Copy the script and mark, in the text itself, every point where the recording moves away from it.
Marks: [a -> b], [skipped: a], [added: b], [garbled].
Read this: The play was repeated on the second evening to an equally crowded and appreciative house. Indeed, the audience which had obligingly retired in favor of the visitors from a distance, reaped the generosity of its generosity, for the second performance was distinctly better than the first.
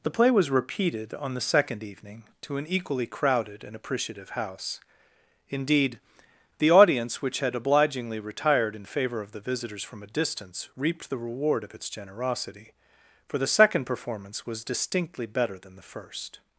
The play was repeated on the second evening to an equally crowded and appreciative house. Indeed, the audience which had obligingly retired in favor of the visitors from a distance, reaped the [generosity -> reward] of its generosity, for the second performance was distinctly better than the first.